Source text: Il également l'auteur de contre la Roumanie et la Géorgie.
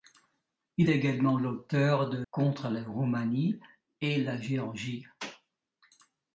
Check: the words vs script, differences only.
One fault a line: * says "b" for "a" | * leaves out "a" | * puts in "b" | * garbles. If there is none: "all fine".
all fine